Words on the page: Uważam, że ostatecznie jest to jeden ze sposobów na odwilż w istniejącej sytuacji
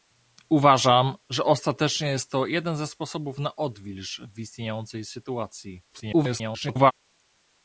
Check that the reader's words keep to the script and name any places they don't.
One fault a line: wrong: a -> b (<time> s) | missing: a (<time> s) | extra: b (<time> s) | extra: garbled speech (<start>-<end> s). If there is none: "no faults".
extra: garbled speech (5.9-6.9 s)